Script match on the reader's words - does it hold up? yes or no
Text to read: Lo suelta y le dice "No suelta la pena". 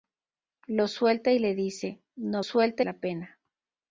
yes